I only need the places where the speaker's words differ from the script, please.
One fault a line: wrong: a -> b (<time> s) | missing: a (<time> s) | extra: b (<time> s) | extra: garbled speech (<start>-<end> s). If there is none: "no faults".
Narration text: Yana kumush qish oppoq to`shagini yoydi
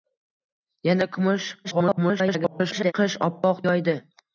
extra: garbled speech (1.6-2.9 s)
missing: to`shagini (3.6 s)